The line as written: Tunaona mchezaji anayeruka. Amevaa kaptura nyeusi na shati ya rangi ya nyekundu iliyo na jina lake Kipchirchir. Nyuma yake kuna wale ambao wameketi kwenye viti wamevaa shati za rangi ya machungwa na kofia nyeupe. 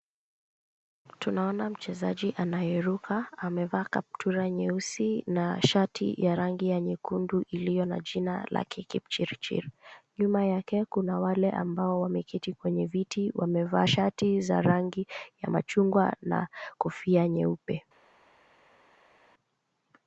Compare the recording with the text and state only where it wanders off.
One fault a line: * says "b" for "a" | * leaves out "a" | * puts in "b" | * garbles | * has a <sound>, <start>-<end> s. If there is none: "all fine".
all fine